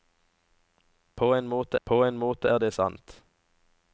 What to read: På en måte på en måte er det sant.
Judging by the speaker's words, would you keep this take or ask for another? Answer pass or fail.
pass